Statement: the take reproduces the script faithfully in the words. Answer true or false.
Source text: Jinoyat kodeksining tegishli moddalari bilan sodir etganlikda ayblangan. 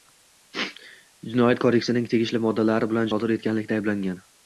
true